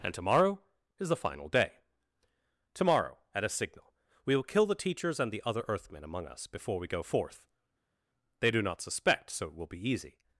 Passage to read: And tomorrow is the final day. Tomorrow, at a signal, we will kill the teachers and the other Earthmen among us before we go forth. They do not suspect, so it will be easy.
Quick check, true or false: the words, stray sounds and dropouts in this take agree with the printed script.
true